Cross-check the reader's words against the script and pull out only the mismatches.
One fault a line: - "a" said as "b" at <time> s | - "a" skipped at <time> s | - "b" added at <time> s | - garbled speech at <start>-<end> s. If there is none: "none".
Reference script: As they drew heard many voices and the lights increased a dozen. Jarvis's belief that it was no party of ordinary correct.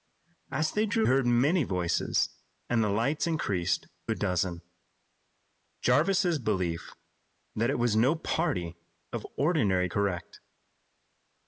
none